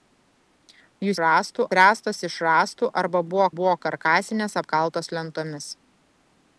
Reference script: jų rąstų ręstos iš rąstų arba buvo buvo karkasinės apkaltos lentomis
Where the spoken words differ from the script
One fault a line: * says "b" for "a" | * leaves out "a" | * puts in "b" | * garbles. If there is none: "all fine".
all fine